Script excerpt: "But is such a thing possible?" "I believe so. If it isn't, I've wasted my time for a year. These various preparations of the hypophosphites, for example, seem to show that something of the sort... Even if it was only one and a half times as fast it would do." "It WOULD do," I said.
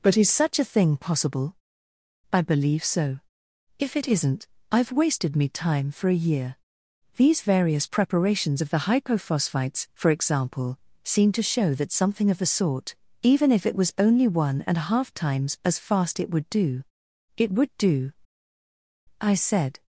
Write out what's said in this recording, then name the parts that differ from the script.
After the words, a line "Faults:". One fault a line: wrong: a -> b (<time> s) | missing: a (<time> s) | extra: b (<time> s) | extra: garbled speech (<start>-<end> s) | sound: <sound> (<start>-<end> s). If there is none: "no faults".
"But is such a thing possible?" "I believe so. If it isn't, I've wasted me time for a year. These various preparations of the hypophosphites, for example, seem to show that something of the sort... Even if it was only one and a half times as fast it would do." "It WOULD do," I said.
Faults:
wrong: my -> me (5.3 s)